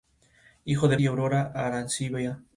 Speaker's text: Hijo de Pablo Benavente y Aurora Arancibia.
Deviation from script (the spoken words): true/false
true